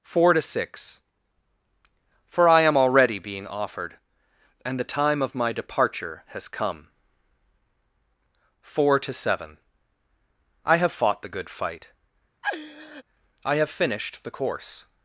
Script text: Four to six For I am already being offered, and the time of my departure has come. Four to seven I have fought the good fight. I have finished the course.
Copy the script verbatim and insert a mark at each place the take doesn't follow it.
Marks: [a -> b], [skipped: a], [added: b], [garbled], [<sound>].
Four to six For I am already being offered, and the time of my departure has come. Four to seven I have fought the good fight. [laugh] I have finished the course.